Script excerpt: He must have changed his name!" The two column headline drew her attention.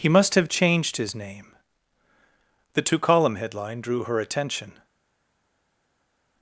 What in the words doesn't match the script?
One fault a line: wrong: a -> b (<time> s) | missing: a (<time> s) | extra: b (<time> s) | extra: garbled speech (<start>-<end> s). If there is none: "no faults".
no faults